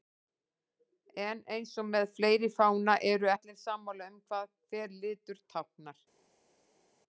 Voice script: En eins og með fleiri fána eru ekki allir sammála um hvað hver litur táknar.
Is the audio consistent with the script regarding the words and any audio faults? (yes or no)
no